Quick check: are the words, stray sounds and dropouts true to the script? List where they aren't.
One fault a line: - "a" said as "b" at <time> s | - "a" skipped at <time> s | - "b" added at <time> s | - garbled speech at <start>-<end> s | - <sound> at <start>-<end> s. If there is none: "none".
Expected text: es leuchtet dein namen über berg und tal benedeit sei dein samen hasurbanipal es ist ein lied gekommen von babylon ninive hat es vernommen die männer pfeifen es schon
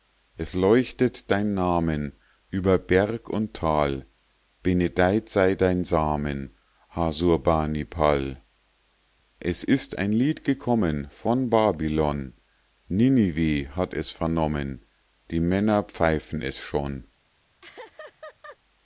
- laugh at 17.6-18.6 s